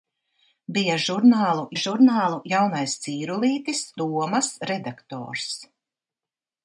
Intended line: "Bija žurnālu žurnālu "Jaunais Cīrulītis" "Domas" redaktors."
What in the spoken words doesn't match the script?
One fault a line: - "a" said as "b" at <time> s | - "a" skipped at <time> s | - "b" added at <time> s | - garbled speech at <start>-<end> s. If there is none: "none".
none